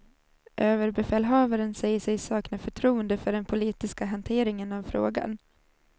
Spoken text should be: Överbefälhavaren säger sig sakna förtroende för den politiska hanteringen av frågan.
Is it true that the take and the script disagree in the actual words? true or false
false